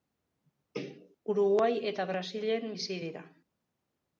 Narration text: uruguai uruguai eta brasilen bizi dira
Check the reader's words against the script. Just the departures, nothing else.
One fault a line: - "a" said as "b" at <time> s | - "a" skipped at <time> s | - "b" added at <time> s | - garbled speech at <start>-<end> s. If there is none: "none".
- "uruguai" skipped at 1.7 s